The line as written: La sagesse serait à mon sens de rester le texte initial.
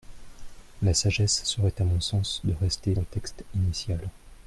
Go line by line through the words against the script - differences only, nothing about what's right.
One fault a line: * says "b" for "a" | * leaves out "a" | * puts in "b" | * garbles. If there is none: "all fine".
all fine